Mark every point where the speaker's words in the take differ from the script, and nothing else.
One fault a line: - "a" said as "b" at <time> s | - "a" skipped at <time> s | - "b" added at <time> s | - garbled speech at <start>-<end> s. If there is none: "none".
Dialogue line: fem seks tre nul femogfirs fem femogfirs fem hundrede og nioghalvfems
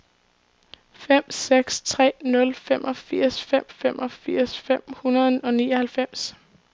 none